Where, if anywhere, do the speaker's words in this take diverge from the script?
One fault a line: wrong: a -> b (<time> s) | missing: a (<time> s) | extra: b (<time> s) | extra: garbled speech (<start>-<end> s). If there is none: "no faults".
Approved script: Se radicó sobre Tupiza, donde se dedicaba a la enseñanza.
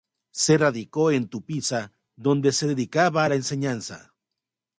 wrong: sobre -> en (1.1 s)